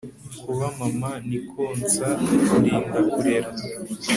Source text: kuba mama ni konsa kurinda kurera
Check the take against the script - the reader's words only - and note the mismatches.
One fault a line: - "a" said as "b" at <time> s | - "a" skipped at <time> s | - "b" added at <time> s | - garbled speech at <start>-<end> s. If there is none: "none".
none